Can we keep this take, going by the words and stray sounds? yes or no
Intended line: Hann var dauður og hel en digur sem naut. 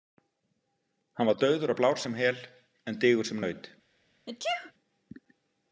no